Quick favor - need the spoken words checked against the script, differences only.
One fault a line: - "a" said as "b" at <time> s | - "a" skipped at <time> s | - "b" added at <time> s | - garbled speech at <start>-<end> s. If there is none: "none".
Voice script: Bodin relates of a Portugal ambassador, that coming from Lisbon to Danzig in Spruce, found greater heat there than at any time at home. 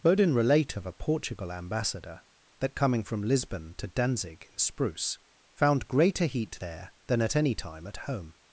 - "relates" said as "relate" at 0.3 s